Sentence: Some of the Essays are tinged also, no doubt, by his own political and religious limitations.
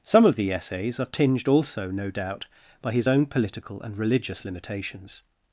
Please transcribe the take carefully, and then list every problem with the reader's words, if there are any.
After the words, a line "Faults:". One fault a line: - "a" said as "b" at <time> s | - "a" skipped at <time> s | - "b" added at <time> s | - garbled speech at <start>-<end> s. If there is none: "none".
Some of the Essays are tinged also, no doubt, by his own political and religious limitations.
Faults:
none